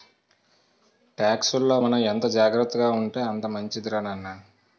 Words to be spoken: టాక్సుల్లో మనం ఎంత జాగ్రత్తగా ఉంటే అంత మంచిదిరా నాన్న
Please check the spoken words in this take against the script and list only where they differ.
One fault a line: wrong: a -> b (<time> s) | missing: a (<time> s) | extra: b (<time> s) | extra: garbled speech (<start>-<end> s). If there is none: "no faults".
no faults